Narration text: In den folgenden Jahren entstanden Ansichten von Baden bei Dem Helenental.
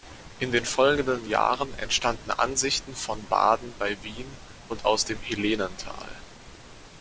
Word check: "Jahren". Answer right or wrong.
right